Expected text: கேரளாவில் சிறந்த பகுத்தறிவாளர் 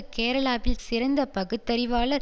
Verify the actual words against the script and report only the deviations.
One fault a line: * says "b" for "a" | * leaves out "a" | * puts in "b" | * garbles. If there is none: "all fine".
all fine